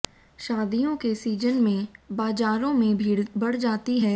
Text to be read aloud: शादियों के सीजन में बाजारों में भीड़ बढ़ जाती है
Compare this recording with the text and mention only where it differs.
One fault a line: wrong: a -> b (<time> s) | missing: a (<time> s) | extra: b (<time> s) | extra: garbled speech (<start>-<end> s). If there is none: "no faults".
no faults